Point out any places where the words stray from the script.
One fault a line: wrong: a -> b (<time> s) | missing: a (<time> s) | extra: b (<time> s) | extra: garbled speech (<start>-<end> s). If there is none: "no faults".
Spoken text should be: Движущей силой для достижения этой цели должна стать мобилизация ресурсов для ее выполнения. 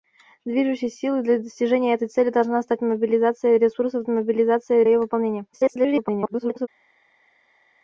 wrong: для -> мобилизация (4.1 s)
extra: garbled speech (5.5-6.7 s)